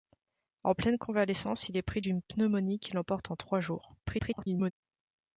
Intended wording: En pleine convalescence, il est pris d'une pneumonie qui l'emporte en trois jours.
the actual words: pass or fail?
fail